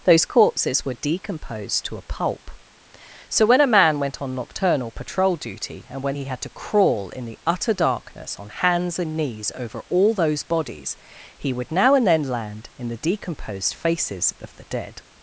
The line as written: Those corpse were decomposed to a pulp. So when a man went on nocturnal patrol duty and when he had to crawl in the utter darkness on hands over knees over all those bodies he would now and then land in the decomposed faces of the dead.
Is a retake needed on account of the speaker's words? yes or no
yes